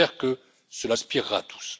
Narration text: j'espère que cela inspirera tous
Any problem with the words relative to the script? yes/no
no